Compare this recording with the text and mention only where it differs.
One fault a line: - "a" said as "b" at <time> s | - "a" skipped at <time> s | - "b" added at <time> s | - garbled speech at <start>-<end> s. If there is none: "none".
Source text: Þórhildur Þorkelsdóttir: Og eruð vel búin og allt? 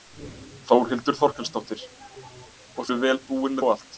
none